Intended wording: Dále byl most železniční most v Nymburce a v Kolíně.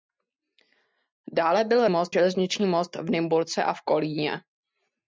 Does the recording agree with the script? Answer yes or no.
yes